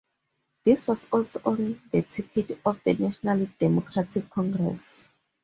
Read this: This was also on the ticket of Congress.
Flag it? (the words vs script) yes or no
yes